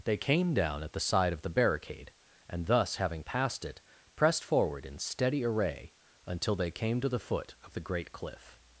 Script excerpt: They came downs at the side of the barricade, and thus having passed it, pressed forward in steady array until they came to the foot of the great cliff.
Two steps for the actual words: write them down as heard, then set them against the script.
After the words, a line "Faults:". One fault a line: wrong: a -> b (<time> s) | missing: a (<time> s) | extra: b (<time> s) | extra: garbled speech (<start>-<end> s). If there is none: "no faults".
They came down at the side of the barricade, and thus having passed it, pressed forward in steady array until they came to the foot of the great cliff.
Faults:
wrong: downs -> down (0.5 s)